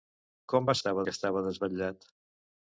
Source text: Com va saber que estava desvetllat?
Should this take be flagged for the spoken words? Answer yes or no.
yes